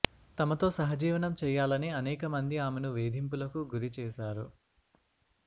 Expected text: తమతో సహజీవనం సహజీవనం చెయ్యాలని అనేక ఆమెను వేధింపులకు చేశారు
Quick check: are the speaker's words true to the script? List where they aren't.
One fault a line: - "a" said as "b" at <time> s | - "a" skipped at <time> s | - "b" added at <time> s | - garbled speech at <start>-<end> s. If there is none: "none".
- "సహజీవనం" skipped at 1.3 s
- "మంది" added at 2.4 s
- "గురి" added at 3.7 s